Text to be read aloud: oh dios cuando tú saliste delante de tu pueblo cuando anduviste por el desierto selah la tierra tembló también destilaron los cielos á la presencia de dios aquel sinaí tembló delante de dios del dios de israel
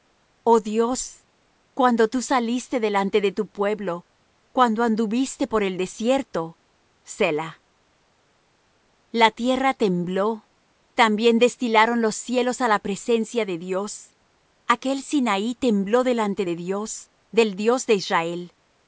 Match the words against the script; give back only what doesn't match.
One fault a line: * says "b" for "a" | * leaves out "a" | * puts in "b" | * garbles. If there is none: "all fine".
all fine